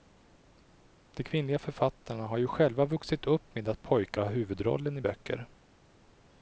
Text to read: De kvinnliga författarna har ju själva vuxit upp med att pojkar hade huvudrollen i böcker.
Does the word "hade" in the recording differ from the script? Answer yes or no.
yes